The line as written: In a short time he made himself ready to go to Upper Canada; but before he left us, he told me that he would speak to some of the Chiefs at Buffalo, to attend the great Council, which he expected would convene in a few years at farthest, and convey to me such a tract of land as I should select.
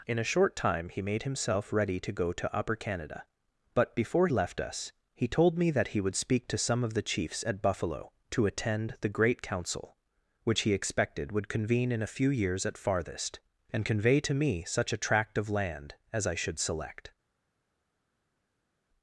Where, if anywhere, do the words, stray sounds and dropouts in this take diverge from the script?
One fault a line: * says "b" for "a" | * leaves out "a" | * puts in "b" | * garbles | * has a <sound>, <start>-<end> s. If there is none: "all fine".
* leaves out "he"